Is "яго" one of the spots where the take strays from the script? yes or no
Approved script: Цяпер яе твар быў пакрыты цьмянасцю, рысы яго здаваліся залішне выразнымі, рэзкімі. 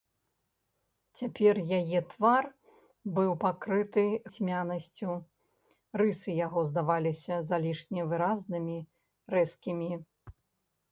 no